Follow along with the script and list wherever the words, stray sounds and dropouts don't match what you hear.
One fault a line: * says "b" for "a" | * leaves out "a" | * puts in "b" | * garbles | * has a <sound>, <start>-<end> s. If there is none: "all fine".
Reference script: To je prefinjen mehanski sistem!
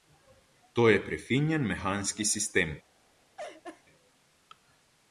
* has a laugh, 3.4-3.8 s